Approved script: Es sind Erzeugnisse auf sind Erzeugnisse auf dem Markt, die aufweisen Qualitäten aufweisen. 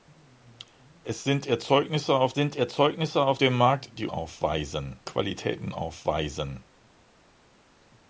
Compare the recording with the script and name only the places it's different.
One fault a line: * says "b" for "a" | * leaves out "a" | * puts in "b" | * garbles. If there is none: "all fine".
all fine